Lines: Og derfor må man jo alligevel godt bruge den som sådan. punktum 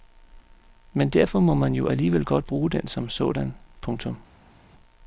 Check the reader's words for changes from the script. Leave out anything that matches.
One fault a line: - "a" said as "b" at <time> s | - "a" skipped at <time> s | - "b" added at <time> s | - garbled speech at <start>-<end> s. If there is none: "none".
- "Og" said as "Men" at 0.9 s